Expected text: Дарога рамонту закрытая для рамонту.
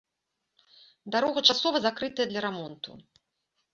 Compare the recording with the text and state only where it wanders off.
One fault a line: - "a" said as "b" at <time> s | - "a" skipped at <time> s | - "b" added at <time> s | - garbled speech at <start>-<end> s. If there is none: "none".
- "рамонту" said as "часова" at 1.5 s